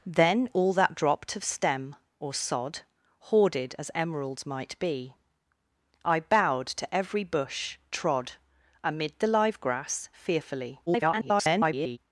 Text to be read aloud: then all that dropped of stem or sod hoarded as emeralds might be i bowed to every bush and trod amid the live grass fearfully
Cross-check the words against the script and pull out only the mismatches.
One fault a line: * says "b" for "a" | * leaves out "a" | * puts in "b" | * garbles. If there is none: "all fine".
* leaves out "and"
* garbles